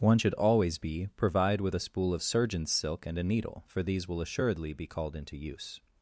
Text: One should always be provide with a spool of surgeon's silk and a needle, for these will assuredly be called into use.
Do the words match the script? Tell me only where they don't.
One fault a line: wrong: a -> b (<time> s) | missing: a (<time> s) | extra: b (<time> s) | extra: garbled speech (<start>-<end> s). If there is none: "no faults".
no faults